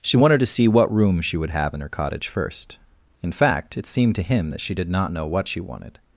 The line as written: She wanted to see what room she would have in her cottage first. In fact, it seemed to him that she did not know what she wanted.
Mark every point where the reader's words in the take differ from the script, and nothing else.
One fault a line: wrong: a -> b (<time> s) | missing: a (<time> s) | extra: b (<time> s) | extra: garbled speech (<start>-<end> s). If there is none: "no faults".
no faults